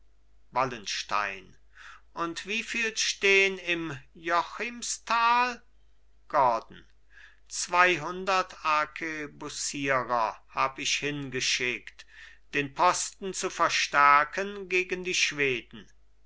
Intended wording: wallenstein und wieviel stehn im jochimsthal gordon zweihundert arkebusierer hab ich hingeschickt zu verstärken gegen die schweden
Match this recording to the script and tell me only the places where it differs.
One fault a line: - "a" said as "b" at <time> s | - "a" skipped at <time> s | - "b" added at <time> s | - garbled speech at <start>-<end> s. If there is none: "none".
- "den posten" added at 12.5 s